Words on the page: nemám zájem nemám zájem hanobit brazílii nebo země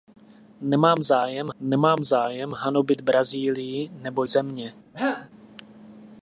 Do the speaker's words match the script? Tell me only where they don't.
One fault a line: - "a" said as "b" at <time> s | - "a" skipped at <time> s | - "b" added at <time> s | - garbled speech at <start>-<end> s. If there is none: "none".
none